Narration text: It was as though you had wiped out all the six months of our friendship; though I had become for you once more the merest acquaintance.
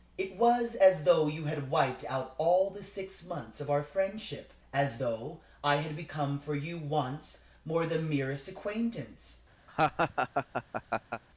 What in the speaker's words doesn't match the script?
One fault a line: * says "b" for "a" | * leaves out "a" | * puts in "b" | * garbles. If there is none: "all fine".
* puts in "as"